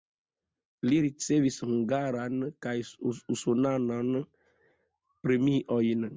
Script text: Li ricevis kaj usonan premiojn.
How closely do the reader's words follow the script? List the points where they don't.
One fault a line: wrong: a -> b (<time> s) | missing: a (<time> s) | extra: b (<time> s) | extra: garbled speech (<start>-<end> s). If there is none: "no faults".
extra: hungaran (1.7 s)